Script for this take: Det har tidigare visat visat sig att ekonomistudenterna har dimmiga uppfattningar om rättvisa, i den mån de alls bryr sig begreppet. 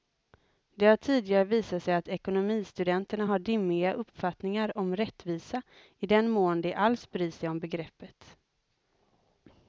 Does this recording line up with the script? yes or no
no